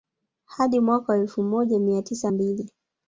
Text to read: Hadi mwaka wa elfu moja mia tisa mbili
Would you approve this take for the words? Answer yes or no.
yes